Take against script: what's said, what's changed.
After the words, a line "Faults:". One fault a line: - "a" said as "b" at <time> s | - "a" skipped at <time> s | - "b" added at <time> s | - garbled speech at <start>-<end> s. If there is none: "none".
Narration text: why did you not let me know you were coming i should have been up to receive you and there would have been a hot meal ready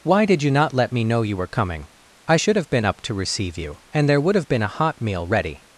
why did you not let me know you were coming i should have been up to receive you and there would have been a hot meal ready
Faults:
none